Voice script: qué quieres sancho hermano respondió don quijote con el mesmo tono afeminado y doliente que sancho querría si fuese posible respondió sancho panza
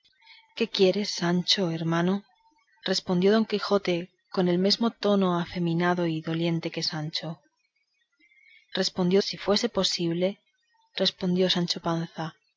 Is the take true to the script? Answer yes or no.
no